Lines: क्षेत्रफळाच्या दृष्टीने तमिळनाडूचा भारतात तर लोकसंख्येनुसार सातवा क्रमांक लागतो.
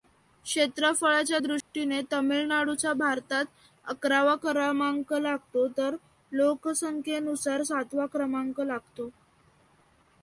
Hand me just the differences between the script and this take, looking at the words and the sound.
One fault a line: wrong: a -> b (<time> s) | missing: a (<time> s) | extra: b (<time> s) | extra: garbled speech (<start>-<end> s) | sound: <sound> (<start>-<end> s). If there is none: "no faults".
sound: dropout (1.6-1.7 s)
extra: अकरावा क्रमांक लागतो (3.8 s)